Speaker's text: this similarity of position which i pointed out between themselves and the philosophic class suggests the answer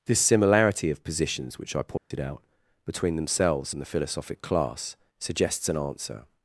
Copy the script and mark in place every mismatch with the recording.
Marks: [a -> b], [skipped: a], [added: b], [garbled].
this similarity of [position -> positions] which i pointed out between themselves and the philosophic class suggests [the -> an] answer